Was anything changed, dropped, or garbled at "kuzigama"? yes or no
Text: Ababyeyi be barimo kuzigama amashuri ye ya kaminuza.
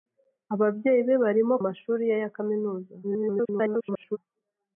yes